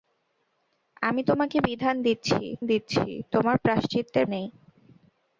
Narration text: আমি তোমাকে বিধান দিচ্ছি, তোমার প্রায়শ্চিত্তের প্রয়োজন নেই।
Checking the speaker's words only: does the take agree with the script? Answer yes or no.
no